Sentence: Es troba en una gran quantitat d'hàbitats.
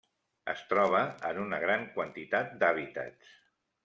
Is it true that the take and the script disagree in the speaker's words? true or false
false